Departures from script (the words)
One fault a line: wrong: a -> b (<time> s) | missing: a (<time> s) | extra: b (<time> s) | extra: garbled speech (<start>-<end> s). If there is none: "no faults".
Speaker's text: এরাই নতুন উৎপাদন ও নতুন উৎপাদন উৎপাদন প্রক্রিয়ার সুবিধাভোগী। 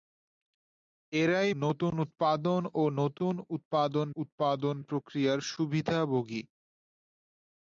no faults